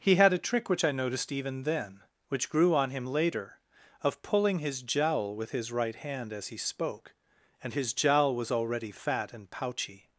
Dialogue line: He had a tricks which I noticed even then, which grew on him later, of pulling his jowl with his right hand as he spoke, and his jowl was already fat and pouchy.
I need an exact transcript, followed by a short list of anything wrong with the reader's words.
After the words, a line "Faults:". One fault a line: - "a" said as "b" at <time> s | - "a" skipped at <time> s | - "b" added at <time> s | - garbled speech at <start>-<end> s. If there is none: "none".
He had a trick which I noticed even then, which grew on him later, of pulling his jowl with his right hand as he spoke, and his jowl was already fat and pouchy.
Faults:
- "tricks" said as "trick" at 0.4 s